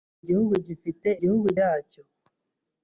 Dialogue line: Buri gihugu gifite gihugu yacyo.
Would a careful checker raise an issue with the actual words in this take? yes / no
no